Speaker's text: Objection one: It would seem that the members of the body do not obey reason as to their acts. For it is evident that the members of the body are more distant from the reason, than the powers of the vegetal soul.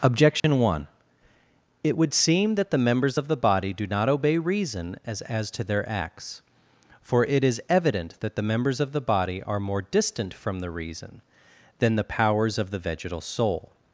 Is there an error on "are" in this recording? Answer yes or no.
no